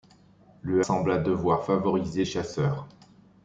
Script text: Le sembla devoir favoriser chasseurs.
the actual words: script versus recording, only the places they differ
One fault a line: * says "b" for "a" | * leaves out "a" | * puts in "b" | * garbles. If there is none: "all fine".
all fine